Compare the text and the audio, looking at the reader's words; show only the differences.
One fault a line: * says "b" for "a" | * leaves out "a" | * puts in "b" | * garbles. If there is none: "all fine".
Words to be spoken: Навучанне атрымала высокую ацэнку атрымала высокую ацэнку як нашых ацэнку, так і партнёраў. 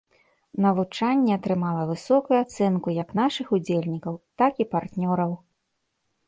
* leaves out "атрымала высокую ацэнку"
* says "удзельнікаў" for "ацэнку"